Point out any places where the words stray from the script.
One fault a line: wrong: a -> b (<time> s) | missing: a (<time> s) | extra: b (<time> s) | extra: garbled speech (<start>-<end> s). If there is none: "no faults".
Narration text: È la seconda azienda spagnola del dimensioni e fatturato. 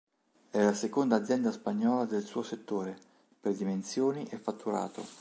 extra: suo settore per (2.2 s)